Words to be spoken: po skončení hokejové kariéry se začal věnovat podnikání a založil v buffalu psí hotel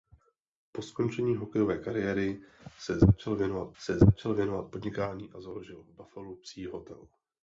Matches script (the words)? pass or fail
fail